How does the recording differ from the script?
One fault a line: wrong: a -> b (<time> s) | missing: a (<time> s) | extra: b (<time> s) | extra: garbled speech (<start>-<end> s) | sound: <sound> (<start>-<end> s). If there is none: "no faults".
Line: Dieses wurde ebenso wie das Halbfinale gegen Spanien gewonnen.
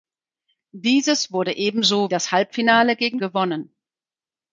missing: wie (2.1 s)
missing: Spanien (3.2 s)